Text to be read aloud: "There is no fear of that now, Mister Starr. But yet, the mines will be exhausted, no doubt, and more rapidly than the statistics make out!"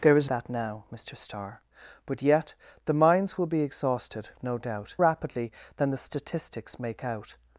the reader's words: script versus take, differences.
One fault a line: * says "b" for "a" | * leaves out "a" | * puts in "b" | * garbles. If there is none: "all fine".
* leaves out "no fear of"
* leaves out "and more"